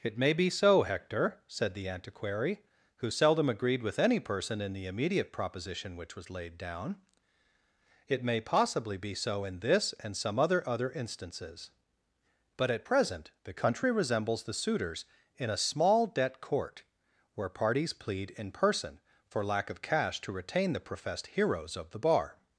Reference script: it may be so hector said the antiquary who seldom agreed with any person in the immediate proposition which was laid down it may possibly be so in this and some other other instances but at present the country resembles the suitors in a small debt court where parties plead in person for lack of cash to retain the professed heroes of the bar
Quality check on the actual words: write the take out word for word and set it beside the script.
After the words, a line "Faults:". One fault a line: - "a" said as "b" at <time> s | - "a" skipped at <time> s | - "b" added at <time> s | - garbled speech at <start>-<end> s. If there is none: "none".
it may be so hector said the antiquary who seldom agreed with any person in the immediate proposition which was laid down it may possibly be so in this and some other other instances but at present the country resembles the suitors in a small debt court where parties plead in person for lack of cash to retain the professed heroes of the bar
Faults:
none